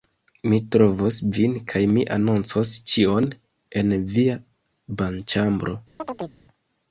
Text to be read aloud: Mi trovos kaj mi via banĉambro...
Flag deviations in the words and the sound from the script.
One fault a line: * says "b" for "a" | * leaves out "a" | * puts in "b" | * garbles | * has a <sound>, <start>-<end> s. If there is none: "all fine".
* puts in "vin"
* puts in "anoncos ĉion en"
* has a chirp, 6.0-6.4 s